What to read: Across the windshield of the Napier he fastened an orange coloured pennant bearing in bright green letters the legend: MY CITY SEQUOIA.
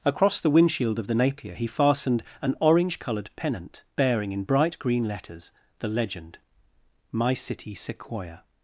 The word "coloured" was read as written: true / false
true